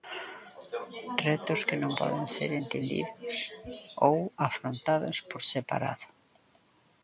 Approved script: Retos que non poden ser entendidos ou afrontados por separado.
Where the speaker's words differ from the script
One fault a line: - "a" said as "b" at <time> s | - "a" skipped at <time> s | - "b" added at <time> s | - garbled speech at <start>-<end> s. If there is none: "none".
none